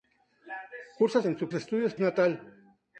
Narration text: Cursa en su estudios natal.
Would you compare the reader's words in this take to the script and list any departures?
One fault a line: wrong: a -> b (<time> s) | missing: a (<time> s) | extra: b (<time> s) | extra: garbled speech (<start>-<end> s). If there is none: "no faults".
no faults